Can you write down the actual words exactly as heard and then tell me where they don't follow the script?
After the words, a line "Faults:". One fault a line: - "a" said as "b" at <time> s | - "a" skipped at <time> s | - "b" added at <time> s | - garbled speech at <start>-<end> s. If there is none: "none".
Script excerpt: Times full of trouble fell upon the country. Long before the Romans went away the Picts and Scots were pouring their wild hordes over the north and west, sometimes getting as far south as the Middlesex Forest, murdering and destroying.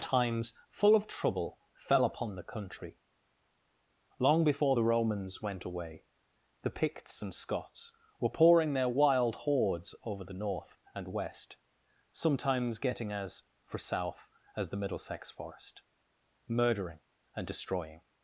Times full of trouble fell upon the country. Long before the Romans went away the Picts and Scots were pouring their wild hordes over the north and west, sometimes getting as for south as the Middlesex Forest, murdering and destroying.
Faults:
- "far" said as "for" at 13.6 s